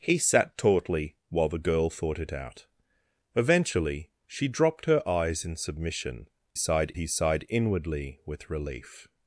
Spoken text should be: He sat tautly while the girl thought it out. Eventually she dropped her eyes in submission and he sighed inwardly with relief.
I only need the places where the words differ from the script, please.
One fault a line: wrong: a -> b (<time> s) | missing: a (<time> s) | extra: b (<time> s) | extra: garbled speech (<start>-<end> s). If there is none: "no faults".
wrong: and -> sighed (6.5 s)